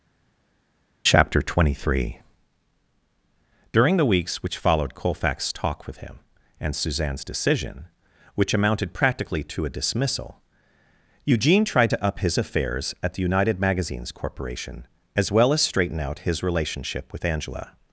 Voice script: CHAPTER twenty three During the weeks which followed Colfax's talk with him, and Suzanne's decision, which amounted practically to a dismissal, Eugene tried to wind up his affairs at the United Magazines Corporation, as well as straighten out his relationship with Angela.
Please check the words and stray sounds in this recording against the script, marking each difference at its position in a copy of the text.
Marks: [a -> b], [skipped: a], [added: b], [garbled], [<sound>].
CHAPTER twenty three During the weeks which followed Colfax's talk with him, and Suzanne's decision, which amounted practically to a dismissal, Eugene tried to [skipped: wind] up his affairs at the United Magazines Corporation, as well as straighten out his relationship with Angela.